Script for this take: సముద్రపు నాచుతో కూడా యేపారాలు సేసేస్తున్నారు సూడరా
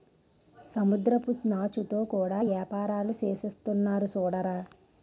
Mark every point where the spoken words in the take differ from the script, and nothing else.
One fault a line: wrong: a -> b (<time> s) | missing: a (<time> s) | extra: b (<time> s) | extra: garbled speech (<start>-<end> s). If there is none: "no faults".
no faults